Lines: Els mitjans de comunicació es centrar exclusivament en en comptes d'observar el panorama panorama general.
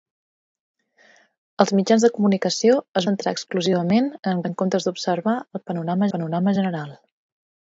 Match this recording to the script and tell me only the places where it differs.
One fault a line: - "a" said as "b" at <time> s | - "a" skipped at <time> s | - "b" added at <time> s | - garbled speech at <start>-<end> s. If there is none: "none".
none